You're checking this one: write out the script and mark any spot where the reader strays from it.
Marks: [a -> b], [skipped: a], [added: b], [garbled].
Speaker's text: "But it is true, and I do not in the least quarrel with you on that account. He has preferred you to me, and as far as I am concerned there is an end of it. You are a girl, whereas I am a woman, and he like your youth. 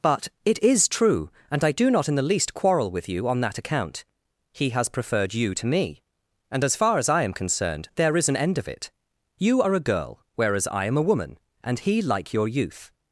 "But it is true, and I do not in the least quarrel with you on that account. He has preferred you to me, and as far as I am concerned there is an end of it. You are a girl, whereas I am a woman, and he like your youth.